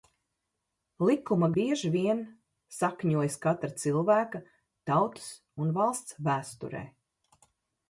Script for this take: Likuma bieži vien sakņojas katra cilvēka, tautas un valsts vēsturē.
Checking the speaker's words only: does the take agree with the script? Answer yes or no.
yes